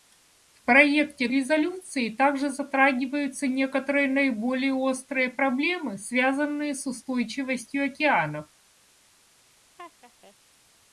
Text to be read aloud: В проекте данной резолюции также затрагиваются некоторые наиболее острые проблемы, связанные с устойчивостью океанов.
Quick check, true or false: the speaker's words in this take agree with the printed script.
false